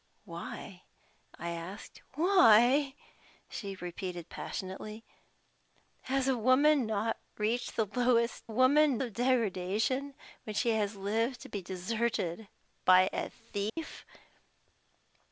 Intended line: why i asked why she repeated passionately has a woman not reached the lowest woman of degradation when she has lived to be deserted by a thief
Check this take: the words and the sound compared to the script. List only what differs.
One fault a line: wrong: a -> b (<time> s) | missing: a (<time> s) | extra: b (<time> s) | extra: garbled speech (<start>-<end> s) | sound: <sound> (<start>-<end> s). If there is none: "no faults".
sound: dropout (13.7-13.8 s)